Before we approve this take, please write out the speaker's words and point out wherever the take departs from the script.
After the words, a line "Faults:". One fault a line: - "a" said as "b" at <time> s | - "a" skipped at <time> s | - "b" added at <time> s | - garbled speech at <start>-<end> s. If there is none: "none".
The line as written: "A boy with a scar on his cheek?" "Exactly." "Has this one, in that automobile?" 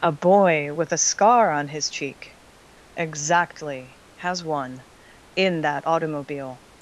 "A boy with a scar on his cheek?" "Exactly." "Has one, in that automobile?"
Faults:
- "this" skipped at 4.4 s